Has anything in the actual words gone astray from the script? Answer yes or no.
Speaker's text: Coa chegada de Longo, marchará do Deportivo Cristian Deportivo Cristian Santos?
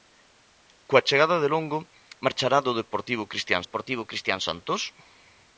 no